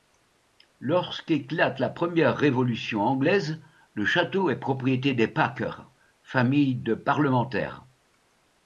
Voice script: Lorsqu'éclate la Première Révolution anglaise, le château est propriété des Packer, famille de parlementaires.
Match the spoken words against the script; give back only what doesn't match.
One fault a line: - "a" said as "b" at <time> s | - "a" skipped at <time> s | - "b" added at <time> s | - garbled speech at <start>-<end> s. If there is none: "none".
none